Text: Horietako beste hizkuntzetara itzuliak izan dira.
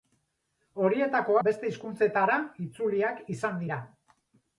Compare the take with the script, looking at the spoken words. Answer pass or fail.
pass